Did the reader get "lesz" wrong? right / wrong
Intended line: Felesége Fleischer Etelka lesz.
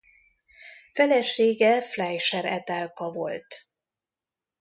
wrong